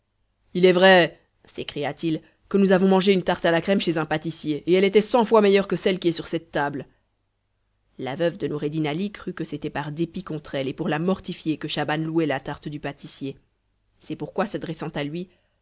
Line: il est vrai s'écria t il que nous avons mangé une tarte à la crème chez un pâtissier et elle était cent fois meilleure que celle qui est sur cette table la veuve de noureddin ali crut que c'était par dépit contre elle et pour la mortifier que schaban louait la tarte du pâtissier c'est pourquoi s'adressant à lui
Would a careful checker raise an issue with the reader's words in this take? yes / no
no